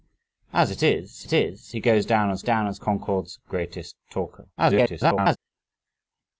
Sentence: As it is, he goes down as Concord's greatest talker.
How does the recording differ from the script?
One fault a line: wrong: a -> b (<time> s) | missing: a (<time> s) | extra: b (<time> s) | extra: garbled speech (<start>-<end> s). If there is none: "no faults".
extra: it is (1.2 s)
extra: down as (2.4 s)
extra: garbled speech (4.6-5.4 s)